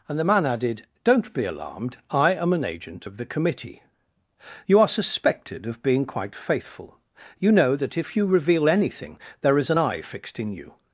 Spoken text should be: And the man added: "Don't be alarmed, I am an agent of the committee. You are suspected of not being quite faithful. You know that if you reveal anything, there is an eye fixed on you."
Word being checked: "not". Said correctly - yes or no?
no